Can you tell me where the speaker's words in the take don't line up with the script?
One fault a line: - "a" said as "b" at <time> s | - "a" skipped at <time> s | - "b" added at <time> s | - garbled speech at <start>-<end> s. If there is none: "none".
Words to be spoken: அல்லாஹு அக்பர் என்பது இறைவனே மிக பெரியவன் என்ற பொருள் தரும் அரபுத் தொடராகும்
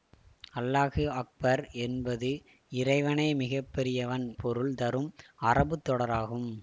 - "என்ற" skipped at 4.3 s